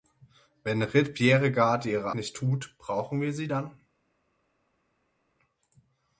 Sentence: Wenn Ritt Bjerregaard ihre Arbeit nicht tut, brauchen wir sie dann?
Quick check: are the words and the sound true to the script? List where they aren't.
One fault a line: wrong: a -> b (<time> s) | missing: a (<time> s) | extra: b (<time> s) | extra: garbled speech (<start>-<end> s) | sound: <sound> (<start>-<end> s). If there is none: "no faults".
missing: Arbeit (2.1 s)